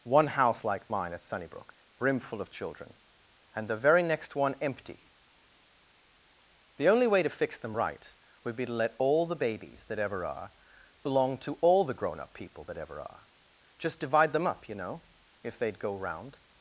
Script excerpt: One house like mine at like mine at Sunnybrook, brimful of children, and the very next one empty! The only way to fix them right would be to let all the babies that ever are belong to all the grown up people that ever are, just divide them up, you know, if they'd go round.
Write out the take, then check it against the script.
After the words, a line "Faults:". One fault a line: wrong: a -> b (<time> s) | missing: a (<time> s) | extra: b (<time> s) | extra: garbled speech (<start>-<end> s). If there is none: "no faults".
One house like mine at Sunnybrook, brimful of children, and the very next one empty! The only way to fix them right would be to let all the babies that ever are belong to all the grown up people that ever are, just divide them up, you know, if they'd go round.
Faults:
missing: like mine at (1.2 s)